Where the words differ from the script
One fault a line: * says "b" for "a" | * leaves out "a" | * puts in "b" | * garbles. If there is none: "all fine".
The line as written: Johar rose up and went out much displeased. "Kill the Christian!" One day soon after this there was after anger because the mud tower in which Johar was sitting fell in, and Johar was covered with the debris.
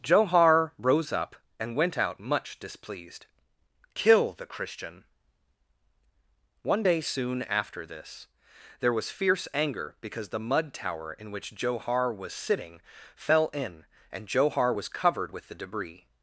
* says "fierce" for "after"